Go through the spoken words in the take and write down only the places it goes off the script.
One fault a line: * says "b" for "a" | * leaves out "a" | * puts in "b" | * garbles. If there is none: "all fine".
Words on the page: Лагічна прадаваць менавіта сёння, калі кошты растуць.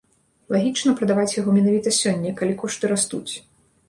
* puts in "яго"